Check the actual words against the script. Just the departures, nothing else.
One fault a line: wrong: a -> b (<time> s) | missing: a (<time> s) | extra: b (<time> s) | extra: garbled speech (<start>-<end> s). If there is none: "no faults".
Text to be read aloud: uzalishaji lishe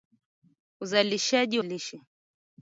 no faults